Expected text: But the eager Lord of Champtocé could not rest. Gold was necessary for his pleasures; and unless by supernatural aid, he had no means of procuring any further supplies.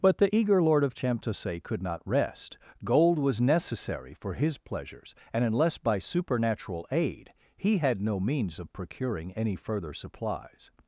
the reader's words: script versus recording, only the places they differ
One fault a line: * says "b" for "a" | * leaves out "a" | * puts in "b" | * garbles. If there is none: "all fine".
all fine